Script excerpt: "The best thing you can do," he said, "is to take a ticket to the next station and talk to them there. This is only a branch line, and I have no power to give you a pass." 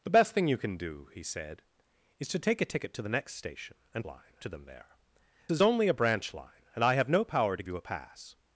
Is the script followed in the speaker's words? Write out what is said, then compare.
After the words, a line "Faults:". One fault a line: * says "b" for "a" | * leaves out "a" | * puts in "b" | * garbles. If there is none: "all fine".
"The best thing you can do," he said, "is to take a ticket to the next station and line to them there. Is only a branch line, and I have no power to you a pass."
Faults:
* says "line" for "talk"
* leaves out "This"
* leaves out "give"